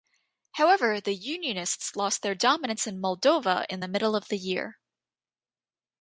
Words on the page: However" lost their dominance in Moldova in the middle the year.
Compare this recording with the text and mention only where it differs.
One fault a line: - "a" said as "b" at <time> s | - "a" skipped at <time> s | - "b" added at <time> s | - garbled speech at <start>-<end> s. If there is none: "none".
- "the unionists" added at 1.0 s
- "of" added at 4.1 s